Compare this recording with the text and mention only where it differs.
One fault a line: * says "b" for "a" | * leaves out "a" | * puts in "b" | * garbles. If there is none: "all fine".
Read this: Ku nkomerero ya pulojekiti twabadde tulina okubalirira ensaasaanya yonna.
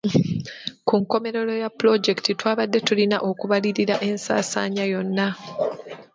all fine